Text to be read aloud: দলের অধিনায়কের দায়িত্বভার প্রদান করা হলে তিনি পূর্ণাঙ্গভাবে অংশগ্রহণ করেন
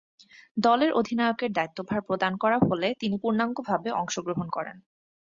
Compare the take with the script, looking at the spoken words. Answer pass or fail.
pass